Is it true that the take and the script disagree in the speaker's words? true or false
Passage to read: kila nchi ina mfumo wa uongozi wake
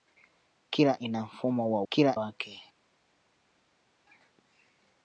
true